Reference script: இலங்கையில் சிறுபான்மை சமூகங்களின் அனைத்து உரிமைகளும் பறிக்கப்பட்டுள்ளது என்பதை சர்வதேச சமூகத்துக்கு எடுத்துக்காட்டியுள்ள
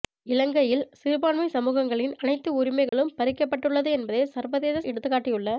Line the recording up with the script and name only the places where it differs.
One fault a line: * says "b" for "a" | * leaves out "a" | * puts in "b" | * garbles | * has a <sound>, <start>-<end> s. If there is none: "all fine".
* has a dropout, 2.9-2.9 s
* leaves out "சமூகத்துக்கு"